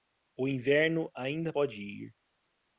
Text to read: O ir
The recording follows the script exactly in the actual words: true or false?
false